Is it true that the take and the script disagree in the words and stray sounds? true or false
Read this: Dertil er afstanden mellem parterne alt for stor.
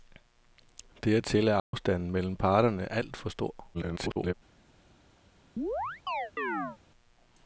true